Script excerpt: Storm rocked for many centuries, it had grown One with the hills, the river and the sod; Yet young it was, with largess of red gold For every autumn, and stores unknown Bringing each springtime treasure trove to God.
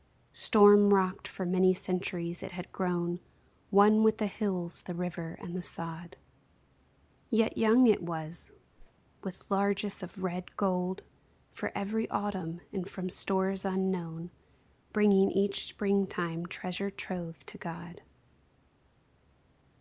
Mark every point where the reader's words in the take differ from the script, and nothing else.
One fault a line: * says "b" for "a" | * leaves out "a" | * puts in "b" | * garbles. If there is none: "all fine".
* puts in "from"